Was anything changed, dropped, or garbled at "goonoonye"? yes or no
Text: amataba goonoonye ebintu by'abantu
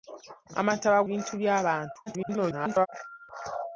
yes